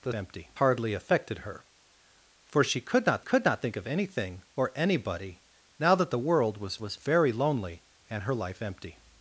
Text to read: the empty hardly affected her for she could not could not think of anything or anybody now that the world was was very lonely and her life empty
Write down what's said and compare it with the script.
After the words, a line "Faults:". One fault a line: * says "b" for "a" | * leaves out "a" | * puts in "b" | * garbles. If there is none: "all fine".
the empty hardly affected her for she could not could not think of anything or anybody now that the world was was very lonely and her life empty
Faults:
all fine